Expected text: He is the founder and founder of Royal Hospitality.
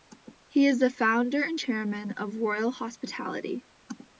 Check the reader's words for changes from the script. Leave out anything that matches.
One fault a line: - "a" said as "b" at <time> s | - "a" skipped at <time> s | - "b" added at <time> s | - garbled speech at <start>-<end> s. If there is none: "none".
- "founder" said as "chairman" at 1.6 s